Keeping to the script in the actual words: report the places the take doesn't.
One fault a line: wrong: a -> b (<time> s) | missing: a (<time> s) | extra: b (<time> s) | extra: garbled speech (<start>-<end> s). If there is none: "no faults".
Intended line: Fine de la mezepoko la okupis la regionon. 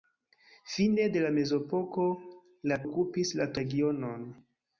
no faults